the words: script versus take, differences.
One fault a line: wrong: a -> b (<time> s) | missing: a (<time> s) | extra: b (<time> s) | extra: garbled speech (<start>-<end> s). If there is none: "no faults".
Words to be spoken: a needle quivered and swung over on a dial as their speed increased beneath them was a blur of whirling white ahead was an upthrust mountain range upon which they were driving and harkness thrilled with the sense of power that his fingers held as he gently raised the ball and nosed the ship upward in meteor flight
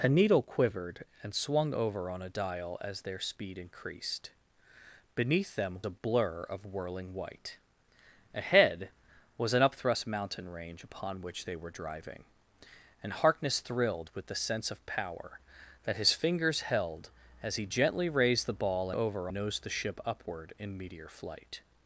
missing: was (5.8 s)
wrong: and -> over (18.9 s)